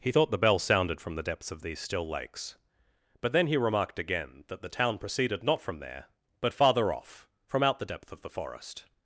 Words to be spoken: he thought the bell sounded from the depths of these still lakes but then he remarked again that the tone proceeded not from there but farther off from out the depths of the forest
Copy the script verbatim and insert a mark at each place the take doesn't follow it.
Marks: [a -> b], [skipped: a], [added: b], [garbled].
he thought the bell sounded from the depths of these still lakes but then he remarked again that the [tone -> town] proceeded not from there but farther off from out the [depths -> depth] of the forest